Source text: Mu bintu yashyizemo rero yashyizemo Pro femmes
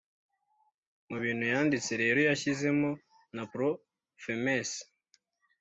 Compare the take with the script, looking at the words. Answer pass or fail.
fail